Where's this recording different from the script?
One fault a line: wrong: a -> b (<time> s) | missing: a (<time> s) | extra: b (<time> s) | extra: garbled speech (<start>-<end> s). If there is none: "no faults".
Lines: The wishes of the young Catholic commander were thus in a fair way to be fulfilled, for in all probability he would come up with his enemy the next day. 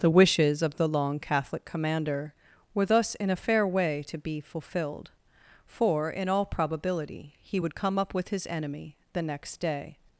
wrong: young -> long (0.9 s)